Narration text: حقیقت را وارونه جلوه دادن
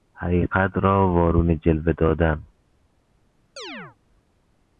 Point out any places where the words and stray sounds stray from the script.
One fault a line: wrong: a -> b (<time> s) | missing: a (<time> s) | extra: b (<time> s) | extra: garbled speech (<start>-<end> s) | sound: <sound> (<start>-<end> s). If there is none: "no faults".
sound: chirp (3.6-4.0 s)